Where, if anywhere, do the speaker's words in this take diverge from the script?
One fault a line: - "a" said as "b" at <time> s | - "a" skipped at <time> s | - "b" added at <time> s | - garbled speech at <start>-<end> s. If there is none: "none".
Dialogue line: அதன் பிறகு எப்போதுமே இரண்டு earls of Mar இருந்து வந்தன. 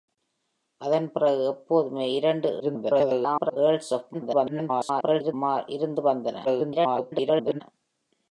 - garbled speech at 2.6-3.6 s
- garbled speech at 4.1-5.3 s
- garbled speech at 6.4-7.6 s